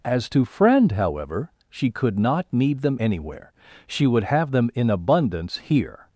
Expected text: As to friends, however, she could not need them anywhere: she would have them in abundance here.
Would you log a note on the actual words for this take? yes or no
yes